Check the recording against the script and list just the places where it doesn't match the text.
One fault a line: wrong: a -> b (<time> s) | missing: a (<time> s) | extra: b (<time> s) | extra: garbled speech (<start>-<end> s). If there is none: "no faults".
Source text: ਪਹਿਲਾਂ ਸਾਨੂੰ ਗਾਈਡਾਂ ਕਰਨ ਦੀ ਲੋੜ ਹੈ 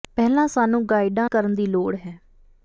no faults